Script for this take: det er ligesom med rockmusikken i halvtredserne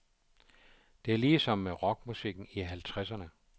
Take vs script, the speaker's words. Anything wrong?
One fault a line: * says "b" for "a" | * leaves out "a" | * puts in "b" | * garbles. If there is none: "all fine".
all fine